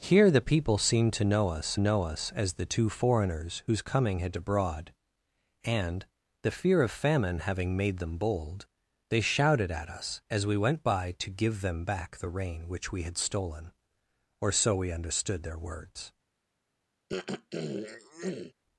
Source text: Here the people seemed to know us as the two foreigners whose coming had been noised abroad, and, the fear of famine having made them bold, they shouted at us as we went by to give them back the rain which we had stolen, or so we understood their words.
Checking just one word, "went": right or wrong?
right